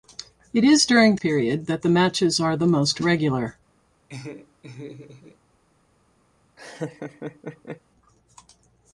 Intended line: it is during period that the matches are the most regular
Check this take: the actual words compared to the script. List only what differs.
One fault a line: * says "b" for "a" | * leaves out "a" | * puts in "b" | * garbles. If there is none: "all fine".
all fine